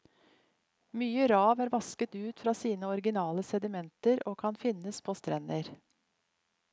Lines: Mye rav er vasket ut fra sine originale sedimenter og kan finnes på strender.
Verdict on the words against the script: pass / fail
pass